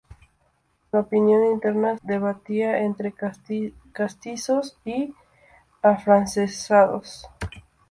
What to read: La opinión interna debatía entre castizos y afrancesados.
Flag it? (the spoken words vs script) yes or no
no